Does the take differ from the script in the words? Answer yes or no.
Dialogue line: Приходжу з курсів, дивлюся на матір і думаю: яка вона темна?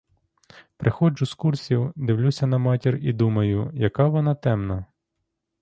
no